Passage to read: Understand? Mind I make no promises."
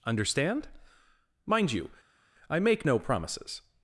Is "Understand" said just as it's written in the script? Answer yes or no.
yes